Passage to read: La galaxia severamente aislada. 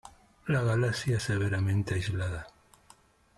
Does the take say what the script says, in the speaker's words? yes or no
yes